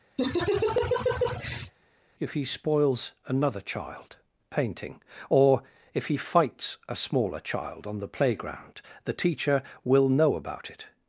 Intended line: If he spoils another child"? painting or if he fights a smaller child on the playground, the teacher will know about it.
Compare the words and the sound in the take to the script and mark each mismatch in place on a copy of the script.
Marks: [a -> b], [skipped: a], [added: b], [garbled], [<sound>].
[laugh] If he spoils another child"? painting or if he fights a smaller child on the playground, the teacher will know about it.